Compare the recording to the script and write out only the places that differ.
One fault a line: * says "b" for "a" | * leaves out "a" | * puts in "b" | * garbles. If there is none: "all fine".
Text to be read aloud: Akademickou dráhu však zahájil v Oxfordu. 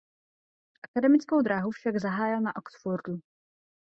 * says "na" for "v"